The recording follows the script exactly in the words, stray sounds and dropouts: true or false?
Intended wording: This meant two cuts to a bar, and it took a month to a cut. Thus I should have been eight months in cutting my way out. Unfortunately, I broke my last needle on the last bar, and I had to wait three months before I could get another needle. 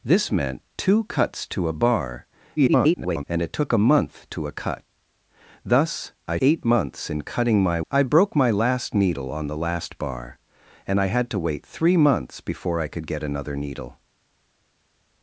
false